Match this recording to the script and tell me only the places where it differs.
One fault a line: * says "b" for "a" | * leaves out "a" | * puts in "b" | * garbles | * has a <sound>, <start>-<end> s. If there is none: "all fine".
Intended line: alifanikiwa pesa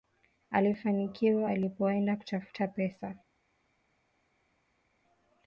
* puts in "alipoenda kutafuta"